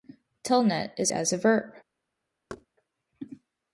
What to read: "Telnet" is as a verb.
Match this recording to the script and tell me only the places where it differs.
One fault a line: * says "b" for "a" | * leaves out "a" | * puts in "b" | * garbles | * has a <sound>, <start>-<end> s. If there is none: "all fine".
* has a thud, 2.5-2.7 s